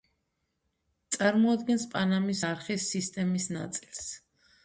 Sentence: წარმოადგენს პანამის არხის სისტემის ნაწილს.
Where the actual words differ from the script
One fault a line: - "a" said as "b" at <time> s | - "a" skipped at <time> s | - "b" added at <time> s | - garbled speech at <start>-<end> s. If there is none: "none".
none